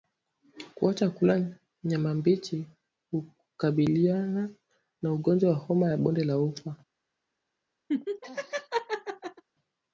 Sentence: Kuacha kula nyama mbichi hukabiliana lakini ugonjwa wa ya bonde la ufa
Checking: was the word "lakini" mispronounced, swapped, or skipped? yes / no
yes